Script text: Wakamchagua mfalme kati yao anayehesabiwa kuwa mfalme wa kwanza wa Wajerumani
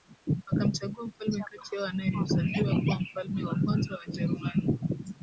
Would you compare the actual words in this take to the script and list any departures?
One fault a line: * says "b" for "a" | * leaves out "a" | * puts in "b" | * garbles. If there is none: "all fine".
all fine